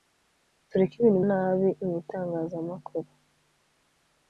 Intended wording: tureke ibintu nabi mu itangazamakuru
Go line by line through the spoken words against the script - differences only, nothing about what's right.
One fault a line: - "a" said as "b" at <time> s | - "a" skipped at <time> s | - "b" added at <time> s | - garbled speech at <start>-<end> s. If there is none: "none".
none